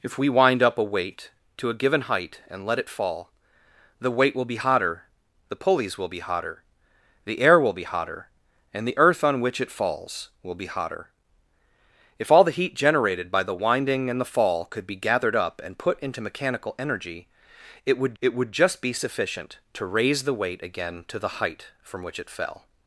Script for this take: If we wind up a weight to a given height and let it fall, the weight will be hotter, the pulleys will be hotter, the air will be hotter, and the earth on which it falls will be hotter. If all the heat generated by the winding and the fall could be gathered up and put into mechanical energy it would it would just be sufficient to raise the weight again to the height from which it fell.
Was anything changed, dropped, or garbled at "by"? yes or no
no